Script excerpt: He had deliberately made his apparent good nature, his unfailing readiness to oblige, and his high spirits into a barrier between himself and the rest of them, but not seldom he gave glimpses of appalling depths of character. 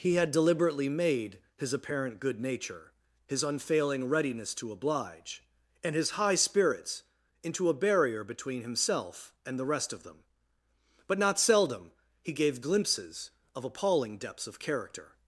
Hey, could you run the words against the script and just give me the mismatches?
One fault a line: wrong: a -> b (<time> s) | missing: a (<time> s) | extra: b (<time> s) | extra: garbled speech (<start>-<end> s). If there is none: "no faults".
no faults